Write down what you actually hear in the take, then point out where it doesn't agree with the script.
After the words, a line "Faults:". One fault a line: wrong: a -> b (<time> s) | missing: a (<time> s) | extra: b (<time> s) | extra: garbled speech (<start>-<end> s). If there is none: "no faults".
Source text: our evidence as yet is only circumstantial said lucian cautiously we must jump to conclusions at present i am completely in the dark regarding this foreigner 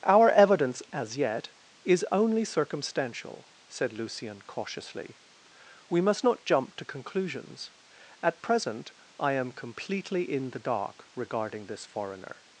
our evidence as yet is only circumstantial said lucian cautiously we must not jump to conclusions at present i am completely in the dark regarding this foreigner
Faults:
extra: not (6.2 s)